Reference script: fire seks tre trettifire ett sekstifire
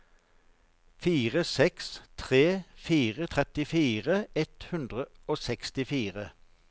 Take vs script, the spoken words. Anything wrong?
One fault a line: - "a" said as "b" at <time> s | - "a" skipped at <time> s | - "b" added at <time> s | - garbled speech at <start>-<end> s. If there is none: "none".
- "fire" added at 2.9 s
- "hundre og" added at 4.7 s